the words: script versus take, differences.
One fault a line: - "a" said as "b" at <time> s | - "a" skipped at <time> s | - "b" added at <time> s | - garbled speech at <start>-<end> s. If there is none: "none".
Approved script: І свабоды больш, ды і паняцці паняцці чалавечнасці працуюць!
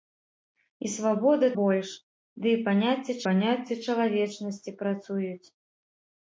none